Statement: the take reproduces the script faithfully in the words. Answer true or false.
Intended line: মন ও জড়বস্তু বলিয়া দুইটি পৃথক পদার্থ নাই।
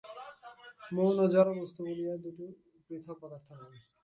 true